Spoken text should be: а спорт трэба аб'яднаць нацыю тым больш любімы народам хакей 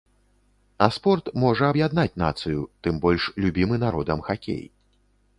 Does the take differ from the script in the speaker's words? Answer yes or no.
yes